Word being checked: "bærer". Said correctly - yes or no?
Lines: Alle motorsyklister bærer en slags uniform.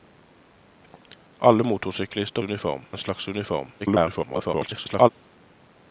no